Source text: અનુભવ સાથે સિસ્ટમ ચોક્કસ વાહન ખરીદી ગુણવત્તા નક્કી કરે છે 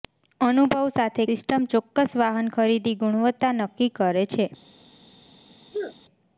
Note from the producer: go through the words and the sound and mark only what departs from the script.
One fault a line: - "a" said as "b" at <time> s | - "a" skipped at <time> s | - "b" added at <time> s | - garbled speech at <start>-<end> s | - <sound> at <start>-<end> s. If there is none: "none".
- sneeze at 5.7-6.0 s